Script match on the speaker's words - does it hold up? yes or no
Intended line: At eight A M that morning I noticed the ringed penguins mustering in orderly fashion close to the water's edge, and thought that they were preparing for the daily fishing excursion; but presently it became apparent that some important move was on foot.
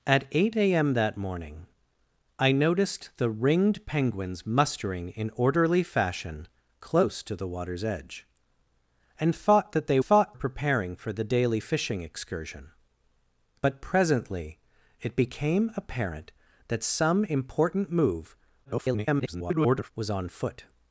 no